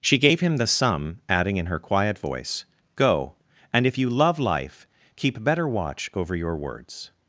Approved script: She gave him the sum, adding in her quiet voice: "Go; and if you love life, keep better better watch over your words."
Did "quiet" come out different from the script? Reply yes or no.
no